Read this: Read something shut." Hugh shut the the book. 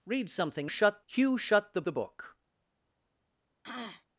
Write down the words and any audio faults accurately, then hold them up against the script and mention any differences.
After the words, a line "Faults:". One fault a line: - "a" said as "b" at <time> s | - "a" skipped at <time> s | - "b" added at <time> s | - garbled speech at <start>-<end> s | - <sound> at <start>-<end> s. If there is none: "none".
Read something shut." Hugh shut the the book.
Faults:
- throat clearing at 3.6-4.1 s